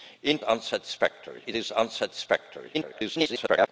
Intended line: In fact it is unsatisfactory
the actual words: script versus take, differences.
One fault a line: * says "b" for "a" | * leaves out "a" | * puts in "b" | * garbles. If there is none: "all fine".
* says "unsatisfactory" for "fact"
* garbles